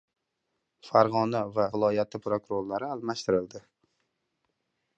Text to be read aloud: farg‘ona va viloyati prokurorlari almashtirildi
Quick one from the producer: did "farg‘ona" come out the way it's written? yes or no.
yes